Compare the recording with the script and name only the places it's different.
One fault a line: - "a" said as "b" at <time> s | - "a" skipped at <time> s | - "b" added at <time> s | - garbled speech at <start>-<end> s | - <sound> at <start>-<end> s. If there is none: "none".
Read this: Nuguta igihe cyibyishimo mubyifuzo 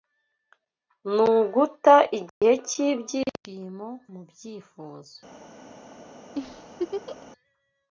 - dropout at 2.3-2.4 s
- laugh at 6.3-7.3 s